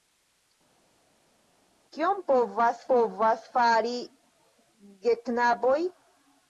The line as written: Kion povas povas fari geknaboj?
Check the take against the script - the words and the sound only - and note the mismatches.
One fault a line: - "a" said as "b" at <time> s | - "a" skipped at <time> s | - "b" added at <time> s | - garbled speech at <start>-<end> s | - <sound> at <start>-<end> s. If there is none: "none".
none